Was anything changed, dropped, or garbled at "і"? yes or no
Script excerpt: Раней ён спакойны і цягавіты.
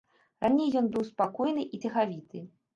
no